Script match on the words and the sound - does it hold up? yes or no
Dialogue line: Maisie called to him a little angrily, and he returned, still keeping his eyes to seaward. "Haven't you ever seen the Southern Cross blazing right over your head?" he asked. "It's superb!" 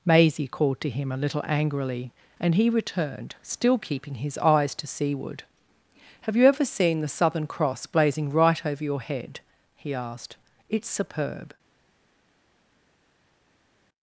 no